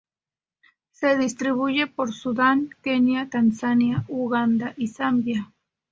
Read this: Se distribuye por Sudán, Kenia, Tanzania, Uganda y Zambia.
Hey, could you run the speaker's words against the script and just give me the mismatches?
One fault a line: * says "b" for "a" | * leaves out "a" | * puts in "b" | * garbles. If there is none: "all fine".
all fine